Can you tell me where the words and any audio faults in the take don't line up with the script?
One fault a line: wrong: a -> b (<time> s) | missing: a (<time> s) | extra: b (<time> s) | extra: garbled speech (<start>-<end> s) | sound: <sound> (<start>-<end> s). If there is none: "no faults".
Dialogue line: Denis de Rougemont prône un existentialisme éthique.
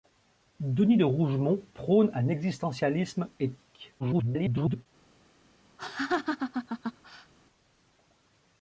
extra: garbled speech (4.0-4.9 s)
sound: laugh (5.8-7.3 s)